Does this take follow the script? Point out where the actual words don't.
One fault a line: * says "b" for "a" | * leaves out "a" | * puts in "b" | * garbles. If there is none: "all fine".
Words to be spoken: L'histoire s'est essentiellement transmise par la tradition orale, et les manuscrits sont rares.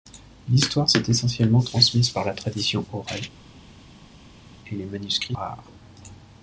* leaves out "sont"